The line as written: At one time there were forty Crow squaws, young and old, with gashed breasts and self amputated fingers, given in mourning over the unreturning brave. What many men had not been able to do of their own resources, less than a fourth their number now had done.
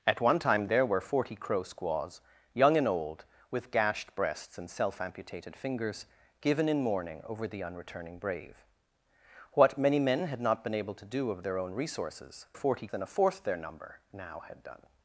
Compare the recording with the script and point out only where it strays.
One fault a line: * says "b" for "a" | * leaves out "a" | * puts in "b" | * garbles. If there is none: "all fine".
* says "forty" for "less"